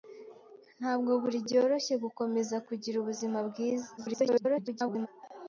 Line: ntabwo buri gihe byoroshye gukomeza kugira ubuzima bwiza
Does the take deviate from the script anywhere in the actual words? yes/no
yes